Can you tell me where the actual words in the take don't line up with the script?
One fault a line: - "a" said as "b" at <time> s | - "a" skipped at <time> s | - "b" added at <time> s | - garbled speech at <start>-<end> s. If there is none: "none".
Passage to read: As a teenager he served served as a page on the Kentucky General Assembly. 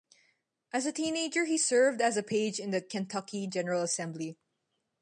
- "served" skipped at 2.0 s
- "on" said as "in" at 2.6 s